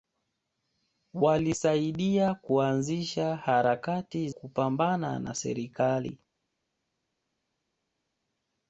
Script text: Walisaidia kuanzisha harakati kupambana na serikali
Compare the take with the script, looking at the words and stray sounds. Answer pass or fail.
pass